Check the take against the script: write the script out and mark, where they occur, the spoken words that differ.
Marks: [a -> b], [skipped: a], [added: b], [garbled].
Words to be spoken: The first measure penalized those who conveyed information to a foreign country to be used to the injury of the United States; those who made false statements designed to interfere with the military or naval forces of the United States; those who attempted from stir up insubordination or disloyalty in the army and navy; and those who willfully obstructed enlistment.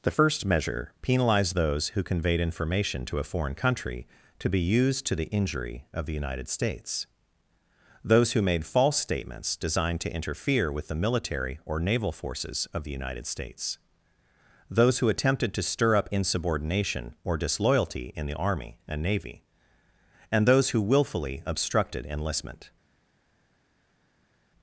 The first measure penalized those who conveyed information to a foreign country to be used to the injury of the United States; those who made false statements designed to interfere with the military or naval forces of the United States; those who attempted [from -> to] stir up insubordination or disloyalty in the army and navy; and those who willfully obstructed enlistment.